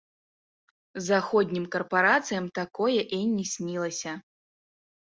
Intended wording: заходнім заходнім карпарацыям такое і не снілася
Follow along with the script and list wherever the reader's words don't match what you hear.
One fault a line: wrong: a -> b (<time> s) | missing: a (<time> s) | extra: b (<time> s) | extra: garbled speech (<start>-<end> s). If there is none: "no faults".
missing: заходнім (1.6 s)